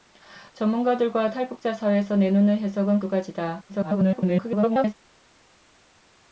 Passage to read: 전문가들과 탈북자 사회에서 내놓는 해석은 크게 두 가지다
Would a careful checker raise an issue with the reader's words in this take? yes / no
yes